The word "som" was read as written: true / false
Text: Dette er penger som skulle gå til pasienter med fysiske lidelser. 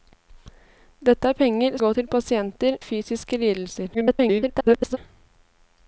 false